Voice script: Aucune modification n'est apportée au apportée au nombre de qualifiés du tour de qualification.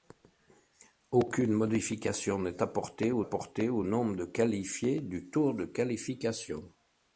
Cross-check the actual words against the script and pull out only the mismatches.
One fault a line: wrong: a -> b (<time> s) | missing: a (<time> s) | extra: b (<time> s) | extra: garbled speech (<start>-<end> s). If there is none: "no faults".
no faults